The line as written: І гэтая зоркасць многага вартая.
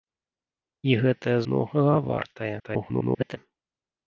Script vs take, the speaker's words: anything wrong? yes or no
yes